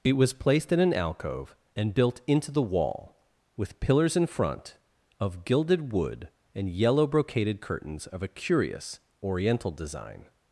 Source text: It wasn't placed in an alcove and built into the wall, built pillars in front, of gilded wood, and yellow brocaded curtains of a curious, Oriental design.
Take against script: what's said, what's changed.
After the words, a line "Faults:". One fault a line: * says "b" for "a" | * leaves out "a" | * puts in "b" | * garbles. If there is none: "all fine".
It was placed in an alcove and built into the wall, with pillars in front, of gilded wood, and yellow brocaded curtains of a curious, Oriental design.
Faults:
* says "was" for "wasn't"
* says "with" for "built"